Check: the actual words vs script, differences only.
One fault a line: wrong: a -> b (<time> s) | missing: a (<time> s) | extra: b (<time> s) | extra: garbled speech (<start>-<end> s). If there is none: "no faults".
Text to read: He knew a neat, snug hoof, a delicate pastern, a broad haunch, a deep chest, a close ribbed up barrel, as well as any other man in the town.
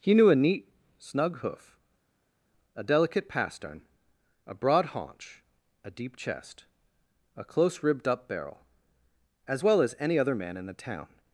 no faults